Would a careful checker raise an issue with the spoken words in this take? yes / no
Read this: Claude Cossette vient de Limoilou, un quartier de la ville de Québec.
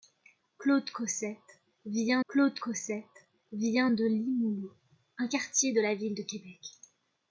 yes